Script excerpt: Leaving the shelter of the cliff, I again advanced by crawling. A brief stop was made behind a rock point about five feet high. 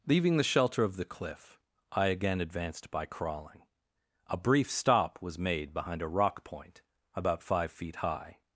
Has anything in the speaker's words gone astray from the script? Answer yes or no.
no